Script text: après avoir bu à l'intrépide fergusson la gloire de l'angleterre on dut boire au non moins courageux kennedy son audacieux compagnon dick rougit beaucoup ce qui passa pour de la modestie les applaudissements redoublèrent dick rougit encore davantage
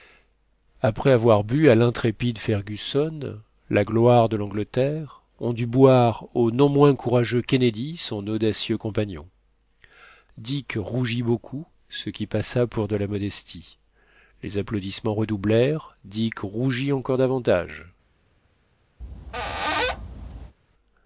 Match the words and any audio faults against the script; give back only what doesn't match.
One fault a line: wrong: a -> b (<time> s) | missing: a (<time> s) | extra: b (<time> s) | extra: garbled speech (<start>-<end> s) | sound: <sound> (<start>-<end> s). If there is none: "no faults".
sound: squeak (19.0-20.6 s)